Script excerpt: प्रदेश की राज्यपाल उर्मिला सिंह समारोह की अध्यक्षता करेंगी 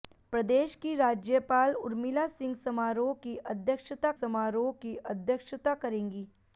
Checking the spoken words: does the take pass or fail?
fail